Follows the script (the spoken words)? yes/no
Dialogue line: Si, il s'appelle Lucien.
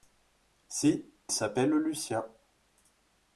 no